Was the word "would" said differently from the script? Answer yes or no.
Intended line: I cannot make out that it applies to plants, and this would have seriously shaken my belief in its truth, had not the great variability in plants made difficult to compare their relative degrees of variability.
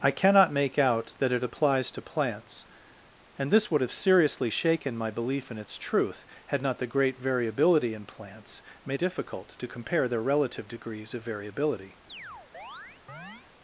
no